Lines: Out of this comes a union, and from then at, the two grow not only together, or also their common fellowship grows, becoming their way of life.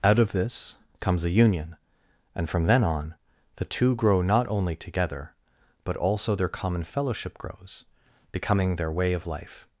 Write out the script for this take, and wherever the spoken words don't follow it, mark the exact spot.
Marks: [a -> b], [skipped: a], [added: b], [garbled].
Out of this comes a union, and from then [at, -> on] the two grow not only together, [or -> but] also their common fellowship grows, becoming their way of life.